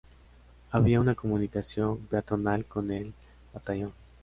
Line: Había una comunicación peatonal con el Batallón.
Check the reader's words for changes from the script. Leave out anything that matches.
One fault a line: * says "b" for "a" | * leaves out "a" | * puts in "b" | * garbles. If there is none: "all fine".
all fine